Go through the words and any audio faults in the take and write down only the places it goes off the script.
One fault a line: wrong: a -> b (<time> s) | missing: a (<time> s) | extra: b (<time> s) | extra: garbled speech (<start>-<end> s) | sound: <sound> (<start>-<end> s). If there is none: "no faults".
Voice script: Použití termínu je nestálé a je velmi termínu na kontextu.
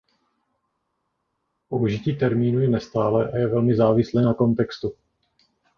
wrong: termínu -> závislé (3.8 s)